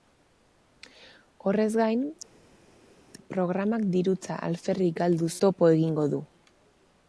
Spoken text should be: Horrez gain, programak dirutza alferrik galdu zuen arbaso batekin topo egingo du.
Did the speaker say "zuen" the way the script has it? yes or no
no